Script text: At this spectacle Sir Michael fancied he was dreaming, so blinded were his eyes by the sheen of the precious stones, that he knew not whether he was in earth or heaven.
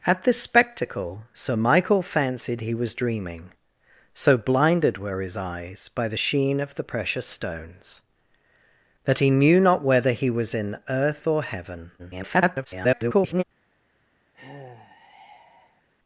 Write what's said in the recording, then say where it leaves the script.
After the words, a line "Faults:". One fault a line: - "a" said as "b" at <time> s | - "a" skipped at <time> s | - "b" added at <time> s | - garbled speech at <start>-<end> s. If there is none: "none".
At this spectacle Sir Michael fancied he was dreaming, so blinded were his eyes by the sheen of the precious stones, that he knew not whether he was in earth or heaven. [garbled]
Faults:
- garbled speech at 12.0-13.4 s